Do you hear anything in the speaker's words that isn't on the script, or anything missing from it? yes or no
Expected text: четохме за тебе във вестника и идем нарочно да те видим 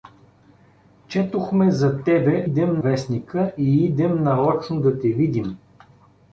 yes